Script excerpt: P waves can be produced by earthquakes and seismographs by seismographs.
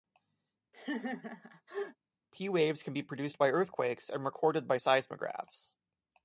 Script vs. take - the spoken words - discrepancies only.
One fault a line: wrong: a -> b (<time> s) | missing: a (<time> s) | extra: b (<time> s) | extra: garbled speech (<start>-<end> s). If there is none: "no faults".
wrong: seismographs -> recorded (4.2 s)